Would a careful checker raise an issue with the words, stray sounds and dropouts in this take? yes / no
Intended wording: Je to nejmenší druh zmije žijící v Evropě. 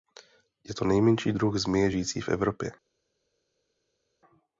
no